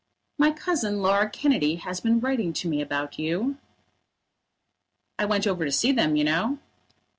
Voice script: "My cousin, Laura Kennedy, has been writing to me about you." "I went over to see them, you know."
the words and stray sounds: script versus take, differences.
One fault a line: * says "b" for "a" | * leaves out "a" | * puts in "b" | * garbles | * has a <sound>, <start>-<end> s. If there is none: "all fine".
all fine